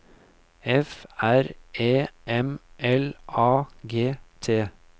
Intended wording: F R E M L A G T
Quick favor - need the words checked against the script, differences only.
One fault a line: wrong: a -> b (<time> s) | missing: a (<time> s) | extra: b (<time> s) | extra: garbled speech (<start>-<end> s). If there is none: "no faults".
no faults